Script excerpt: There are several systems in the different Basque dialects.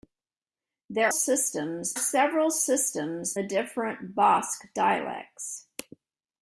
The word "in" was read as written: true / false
false